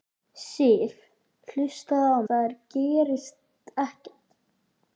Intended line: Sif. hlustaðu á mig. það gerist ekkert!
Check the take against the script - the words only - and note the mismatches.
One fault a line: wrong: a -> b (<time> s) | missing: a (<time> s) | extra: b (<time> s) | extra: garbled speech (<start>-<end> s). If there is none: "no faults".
missing: mig (2.2 s)